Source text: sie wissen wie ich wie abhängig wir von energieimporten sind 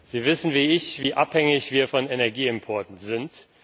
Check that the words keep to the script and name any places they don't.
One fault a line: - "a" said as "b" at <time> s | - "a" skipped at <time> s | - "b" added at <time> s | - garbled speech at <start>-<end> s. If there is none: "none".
none